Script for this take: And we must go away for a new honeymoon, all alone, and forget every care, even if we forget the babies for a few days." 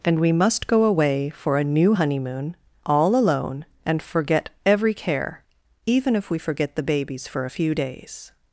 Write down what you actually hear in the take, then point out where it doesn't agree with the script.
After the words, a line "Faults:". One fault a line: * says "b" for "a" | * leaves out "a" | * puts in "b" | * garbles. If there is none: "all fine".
And we must go away for a new honeymoon, all alone, and forget every care, even if we forget the babies for a few days."
Faults:
all fine